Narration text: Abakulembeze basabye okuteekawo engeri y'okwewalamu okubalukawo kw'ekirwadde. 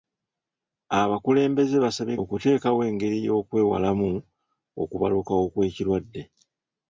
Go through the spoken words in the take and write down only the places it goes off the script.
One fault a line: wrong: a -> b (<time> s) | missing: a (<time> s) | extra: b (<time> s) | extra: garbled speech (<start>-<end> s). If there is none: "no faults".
no faults